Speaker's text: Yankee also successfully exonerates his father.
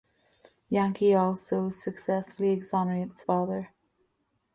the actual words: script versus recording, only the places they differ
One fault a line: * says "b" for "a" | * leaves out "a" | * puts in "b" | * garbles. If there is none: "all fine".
* leaves out "his"